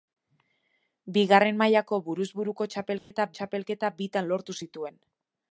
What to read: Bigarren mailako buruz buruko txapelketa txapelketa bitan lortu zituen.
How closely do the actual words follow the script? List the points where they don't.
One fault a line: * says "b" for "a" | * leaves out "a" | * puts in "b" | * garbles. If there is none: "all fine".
all fine